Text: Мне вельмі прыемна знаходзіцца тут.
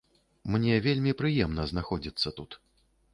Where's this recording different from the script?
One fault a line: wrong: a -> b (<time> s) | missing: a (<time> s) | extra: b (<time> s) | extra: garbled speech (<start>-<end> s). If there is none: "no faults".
no faults